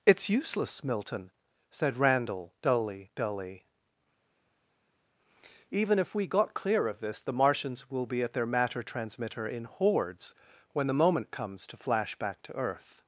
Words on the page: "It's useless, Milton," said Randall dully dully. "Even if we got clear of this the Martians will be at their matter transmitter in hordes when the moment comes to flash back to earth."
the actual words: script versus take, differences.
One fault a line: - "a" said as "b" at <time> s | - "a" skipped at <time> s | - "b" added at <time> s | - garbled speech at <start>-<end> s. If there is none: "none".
none